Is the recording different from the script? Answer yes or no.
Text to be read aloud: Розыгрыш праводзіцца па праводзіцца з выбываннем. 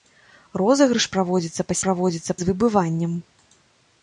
no